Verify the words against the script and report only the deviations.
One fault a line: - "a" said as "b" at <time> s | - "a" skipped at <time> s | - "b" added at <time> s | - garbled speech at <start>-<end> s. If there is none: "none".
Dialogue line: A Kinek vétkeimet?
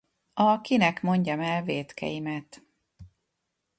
- "mondjam el" added at 1.0 s